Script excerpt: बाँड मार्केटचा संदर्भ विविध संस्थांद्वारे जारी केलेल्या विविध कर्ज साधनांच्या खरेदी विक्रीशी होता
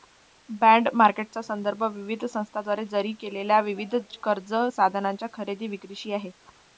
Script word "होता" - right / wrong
wrong